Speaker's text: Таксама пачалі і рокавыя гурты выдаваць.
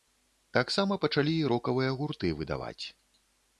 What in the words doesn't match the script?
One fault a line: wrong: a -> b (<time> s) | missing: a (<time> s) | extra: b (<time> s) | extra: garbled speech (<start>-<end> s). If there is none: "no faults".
no faults